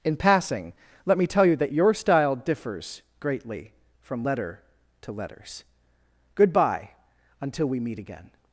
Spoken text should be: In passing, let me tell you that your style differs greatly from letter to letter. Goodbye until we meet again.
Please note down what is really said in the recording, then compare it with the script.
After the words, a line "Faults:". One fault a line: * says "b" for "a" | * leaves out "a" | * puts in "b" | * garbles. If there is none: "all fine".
In passing, let me tell you that your style differs greatly from letter to letters. Goodbye until we meet again.
Faults:
* says "letters" for "letter"